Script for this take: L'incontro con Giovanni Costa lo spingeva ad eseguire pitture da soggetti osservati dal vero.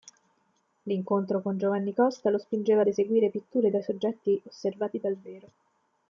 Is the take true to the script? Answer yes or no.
yes